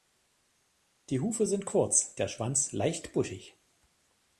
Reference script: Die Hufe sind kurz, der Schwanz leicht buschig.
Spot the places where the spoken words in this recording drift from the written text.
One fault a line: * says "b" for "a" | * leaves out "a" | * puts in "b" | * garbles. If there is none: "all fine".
all fine